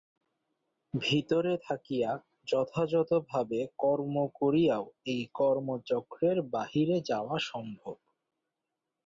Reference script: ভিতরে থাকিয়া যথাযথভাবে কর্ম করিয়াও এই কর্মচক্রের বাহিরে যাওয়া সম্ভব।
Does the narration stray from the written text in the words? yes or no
no